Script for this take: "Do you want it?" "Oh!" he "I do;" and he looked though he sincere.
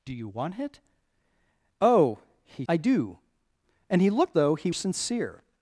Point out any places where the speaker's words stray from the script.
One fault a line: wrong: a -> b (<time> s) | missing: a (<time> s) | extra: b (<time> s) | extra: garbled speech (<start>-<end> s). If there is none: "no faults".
no faults